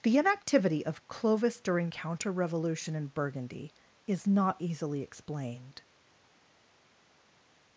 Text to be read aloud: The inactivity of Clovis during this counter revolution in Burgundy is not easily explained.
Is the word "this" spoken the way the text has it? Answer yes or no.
no